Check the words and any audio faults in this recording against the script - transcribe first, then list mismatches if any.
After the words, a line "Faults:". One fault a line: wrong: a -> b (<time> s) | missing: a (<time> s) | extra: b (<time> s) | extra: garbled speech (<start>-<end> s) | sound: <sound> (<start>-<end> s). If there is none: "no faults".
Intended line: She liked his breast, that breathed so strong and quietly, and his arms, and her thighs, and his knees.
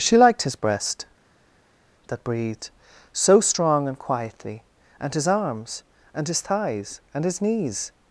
She liked his breast, that breathed so strong and quietly, and his arms, and his thighs, and his knees.
Faults:
wrong: her -> his (6.3 s)